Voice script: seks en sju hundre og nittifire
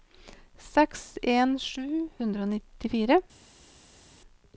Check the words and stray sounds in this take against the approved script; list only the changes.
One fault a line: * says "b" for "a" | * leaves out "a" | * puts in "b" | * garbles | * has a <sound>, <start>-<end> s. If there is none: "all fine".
all fine